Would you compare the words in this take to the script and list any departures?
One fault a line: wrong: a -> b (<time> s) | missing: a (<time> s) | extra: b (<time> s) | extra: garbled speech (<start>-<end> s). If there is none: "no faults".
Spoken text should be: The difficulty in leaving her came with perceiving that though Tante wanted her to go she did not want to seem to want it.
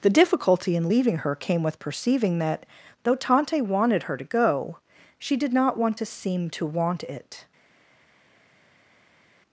no faults